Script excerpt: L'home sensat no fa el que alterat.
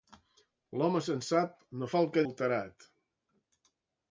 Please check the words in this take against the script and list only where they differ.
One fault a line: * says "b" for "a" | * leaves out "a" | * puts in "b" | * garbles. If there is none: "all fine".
all fine